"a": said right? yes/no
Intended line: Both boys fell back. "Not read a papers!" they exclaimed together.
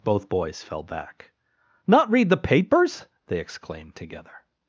no